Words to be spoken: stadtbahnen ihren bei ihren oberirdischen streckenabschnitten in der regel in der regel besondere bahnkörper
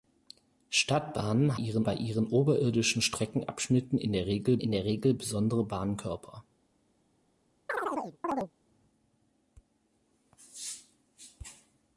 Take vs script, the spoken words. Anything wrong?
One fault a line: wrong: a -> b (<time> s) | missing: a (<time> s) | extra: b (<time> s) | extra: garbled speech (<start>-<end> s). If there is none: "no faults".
no faults